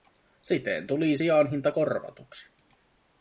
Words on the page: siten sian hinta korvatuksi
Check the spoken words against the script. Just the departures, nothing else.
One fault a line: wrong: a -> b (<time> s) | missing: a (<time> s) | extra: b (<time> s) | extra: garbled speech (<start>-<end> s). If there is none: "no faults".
extra: tuli (0.9 s)